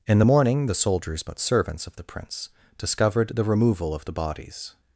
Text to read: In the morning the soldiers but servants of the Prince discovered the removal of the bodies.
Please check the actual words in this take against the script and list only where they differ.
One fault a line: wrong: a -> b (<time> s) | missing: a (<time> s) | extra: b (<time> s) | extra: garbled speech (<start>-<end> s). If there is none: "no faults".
no faults